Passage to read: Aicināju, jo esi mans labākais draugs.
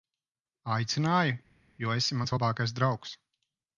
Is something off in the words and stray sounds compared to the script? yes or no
no